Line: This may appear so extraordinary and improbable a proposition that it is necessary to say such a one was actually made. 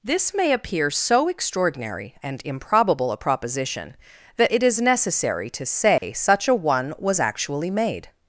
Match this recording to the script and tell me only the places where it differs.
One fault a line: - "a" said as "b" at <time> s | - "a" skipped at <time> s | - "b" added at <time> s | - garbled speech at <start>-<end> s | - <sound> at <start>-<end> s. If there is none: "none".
- dropout at 6.0-6.0 s